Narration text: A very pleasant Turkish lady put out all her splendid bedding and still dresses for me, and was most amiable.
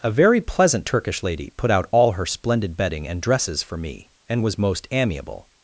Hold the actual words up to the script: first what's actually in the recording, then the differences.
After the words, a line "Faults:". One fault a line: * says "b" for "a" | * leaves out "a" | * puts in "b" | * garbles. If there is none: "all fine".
A very pleasant Turkish lady put out all her splendid bedding and dresses for me, and was most amiable.
Faults:
* leaves out "still"